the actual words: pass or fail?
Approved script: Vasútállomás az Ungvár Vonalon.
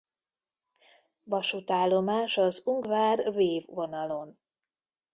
fail